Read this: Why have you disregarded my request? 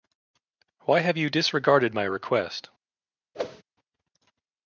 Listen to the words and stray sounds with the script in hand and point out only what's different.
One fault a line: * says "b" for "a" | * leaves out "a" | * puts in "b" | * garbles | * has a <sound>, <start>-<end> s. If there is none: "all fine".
* has a whoosh, 3.3-3.6 s